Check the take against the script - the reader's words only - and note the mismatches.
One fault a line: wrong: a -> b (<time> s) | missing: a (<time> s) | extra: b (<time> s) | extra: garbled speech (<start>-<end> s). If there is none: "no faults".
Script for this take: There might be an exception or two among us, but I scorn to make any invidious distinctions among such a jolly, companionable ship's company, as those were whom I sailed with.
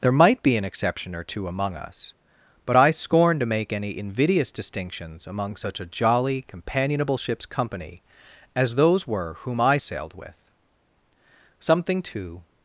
extra: Something too (11.6 s)